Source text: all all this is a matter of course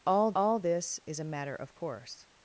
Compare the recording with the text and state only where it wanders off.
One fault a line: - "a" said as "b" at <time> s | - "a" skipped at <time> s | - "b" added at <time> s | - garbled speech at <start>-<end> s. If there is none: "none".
none